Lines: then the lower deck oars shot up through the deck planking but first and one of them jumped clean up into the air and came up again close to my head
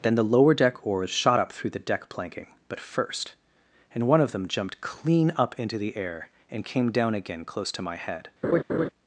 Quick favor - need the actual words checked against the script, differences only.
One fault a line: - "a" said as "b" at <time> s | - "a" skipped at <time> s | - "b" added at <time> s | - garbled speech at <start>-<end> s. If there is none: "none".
- "up" said as "down" at 6.9 s